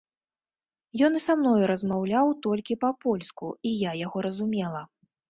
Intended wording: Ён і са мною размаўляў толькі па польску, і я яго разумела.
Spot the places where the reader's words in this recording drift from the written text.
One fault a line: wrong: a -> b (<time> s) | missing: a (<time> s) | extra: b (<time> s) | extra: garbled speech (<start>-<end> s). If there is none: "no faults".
no faults